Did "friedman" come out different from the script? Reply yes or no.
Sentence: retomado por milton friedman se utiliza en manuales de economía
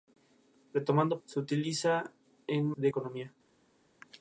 yes